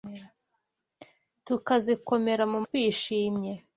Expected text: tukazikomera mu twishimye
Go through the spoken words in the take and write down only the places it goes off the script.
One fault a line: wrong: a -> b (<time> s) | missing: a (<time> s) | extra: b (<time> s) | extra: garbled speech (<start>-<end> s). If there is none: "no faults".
no faults